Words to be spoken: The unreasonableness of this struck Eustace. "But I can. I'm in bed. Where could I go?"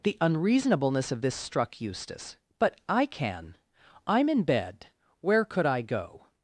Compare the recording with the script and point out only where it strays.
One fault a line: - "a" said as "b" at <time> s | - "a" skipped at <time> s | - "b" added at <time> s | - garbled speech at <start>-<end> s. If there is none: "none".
none